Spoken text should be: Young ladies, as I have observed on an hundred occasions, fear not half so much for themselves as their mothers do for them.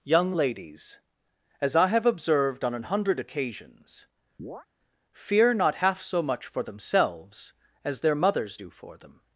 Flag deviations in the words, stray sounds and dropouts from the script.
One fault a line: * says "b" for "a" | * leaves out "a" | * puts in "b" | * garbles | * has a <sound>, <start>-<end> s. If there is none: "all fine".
* has a chirp, 4.4-4.7 s